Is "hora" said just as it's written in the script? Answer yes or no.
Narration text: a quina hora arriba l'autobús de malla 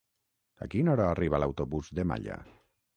yes